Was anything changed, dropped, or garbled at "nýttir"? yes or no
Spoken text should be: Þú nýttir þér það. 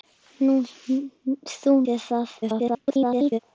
yes